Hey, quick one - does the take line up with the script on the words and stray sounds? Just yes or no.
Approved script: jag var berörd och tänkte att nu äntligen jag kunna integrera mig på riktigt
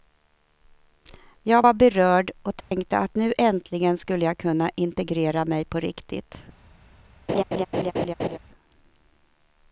no